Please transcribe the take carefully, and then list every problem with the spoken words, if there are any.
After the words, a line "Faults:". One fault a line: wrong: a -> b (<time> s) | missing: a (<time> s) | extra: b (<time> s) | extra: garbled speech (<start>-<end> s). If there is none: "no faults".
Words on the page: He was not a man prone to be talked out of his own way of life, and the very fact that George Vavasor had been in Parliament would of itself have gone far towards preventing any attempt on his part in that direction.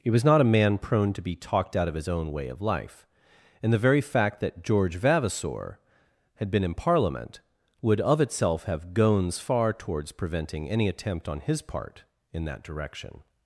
He was not a man prone to be talked out of his own way of life, and the very fact that George Vavasor had been in Parliament would of itself have gones far towards preventing any attempt on his part in that direction.
Faults:
wrong: gone -> gones (8.9 s)